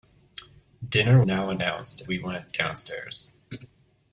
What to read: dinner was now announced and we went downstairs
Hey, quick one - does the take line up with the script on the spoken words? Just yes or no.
no